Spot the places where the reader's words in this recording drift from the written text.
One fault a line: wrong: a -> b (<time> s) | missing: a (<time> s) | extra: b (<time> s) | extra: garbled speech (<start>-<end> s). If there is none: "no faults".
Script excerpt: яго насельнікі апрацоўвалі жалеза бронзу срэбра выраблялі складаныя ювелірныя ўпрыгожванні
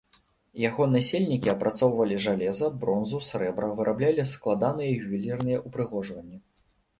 no faults